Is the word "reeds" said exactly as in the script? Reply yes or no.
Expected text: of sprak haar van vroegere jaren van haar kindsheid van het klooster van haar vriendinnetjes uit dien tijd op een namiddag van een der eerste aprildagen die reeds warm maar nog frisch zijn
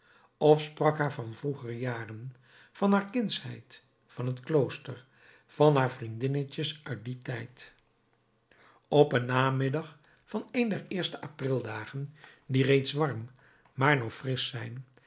yes